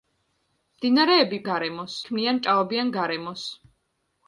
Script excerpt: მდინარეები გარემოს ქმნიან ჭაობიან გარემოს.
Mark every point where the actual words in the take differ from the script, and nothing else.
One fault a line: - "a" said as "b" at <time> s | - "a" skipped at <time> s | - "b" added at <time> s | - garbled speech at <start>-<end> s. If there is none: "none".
none